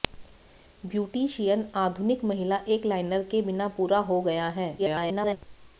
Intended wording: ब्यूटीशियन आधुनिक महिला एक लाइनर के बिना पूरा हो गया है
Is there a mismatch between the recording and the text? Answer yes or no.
yes